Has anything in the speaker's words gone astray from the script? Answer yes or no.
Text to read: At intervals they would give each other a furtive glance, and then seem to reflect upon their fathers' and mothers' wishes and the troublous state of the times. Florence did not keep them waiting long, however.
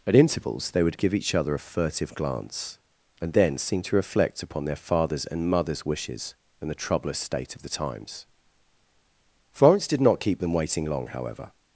no